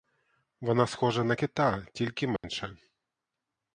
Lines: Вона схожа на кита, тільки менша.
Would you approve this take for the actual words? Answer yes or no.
yes